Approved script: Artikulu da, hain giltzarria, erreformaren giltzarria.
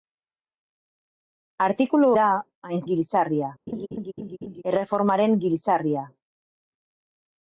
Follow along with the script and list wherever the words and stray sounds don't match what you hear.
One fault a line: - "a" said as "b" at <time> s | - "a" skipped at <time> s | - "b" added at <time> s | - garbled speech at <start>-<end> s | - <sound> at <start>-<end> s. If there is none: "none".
- laugh at 3.7-4.6 s